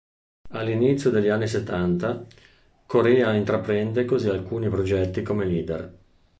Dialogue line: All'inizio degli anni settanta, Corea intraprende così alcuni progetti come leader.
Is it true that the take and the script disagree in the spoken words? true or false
false